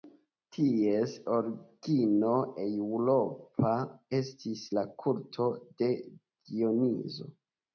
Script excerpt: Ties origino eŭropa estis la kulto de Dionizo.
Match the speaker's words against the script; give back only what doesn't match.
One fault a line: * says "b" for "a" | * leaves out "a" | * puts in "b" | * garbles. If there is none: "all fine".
all fine